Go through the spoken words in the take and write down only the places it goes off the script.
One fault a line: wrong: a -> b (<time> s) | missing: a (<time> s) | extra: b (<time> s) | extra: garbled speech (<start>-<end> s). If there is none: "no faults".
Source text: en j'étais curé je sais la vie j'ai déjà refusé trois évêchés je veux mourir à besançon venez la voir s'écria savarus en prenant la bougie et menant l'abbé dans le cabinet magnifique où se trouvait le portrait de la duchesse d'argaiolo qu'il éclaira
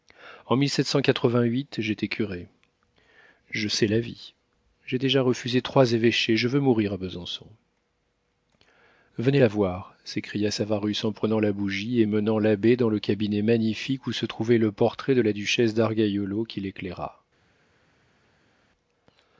no faults